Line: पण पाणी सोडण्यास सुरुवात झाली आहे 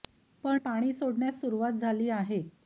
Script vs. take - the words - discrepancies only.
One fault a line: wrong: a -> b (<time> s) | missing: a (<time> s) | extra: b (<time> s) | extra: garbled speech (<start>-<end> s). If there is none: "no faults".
no faults